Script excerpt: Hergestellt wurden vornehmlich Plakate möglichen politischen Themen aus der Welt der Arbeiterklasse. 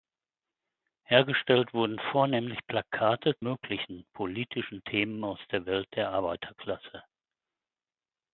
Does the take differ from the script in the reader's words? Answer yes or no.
no